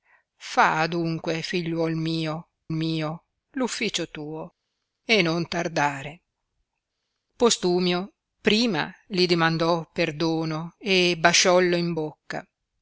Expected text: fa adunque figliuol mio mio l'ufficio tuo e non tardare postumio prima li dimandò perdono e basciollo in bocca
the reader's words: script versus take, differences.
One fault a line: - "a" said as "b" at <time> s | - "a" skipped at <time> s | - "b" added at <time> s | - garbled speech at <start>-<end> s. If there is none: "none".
none